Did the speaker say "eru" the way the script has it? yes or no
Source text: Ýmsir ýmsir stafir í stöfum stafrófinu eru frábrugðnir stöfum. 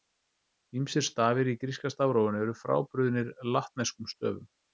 yes